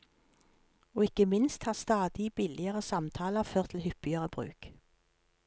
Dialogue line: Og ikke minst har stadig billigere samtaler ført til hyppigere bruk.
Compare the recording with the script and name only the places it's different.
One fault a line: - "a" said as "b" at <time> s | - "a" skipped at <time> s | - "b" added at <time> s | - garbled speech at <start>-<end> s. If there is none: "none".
none